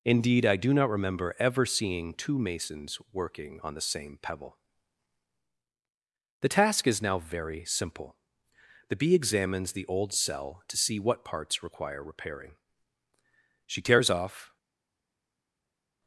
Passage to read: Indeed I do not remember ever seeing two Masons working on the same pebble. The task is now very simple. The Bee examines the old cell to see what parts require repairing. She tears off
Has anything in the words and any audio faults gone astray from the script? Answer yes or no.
no